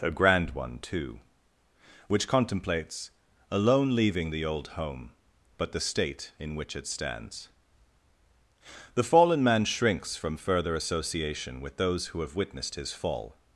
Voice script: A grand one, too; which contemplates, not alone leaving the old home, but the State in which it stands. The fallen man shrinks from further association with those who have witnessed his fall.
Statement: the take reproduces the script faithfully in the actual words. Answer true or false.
false